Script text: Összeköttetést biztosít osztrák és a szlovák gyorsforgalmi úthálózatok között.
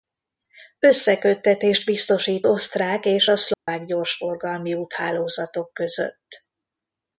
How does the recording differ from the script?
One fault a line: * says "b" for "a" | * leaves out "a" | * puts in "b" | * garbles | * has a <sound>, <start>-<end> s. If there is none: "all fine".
* has a dropout, 3.5-3.7 s